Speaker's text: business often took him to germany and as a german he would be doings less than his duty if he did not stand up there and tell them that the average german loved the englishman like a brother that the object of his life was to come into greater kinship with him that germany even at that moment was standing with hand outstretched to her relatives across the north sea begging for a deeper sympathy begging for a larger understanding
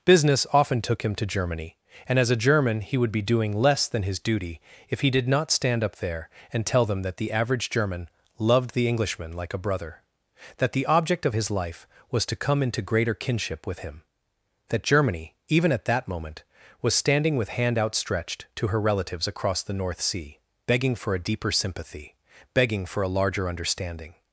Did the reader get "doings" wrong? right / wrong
wrong